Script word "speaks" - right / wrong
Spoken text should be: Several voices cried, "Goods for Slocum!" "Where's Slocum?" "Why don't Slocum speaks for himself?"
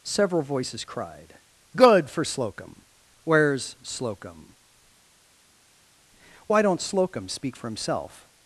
wrong